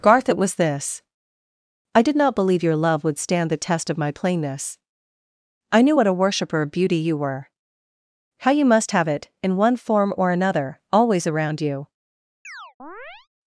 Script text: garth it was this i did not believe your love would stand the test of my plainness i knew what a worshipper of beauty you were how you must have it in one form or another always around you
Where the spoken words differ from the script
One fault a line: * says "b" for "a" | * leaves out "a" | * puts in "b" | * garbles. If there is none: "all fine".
all fine